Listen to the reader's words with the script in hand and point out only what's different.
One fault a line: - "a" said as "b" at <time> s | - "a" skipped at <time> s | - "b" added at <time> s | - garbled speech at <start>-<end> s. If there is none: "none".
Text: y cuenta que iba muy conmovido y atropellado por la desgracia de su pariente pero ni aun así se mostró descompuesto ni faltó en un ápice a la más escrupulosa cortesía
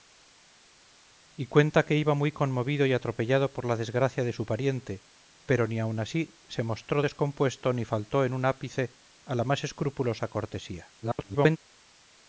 - garbled speech at 11.0-11.6 s